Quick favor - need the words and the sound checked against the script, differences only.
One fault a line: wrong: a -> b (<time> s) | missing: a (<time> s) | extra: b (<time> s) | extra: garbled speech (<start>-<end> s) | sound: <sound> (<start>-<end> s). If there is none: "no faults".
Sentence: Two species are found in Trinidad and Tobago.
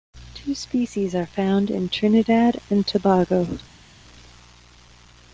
no faults